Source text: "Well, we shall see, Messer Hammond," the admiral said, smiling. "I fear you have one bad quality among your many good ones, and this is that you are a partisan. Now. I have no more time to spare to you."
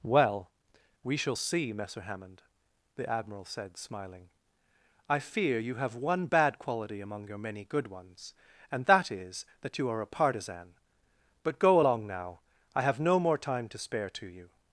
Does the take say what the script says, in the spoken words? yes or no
no